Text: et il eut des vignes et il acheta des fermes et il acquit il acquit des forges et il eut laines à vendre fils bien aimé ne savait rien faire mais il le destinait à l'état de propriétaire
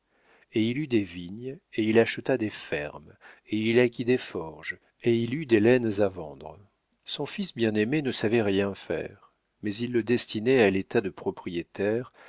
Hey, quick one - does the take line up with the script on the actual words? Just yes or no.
no